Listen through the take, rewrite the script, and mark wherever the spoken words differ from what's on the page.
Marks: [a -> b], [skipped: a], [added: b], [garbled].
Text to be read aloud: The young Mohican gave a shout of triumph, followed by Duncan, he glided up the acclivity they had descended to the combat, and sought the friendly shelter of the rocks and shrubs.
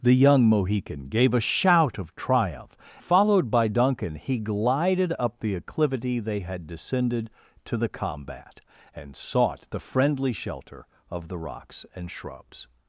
The young Mohican gave a shout of triumph, followed by Duncan, he glided up the acclivity they had descended to the combat, and sought the friendly shelter of the rocks and shrubs.